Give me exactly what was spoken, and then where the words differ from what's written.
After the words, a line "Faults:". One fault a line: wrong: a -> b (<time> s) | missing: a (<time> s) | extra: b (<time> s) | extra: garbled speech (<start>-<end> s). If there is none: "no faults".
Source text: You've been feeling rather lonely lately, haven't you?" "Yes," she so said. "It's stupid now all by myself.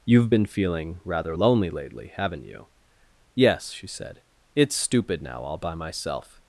You've been feeling rather lonely lately, haven't you?" "Yes," she said. "It's stupid now all by myself.
Faults:
missing: so (3.9 s)